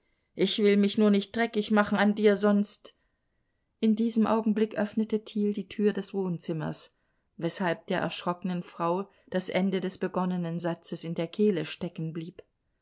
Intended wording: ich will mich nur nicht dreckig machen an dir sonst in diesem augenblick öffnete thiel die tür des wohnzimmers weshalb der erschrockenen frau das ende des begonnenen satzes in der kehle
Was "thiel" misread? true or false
false